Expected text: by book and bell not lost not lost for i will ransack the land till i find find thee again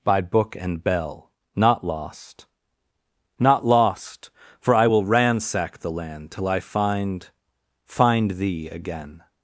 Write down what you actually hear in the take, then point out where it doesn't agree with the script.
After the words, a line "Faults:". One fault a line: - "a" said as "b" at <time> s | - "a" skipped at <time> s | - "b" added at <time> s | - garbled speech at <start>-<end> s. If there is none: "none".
by book and bell not lost not lost for i will ransack the land till i find find thee again
Faults:
none